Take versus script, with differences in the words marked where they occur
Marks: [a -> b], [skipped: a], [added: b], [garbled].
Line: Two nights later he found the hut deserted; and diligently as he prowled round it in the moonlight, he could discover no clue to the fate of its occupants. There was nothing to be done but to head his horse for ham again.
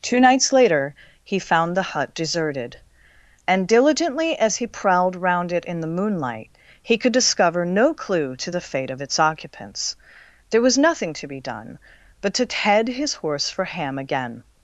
Two nights later he found the hut deserted; and diligently as he prowled round it in the moonlight, he could discover no clue to the fate of its occupants. There was nothing to be done but to head his horse for ham again.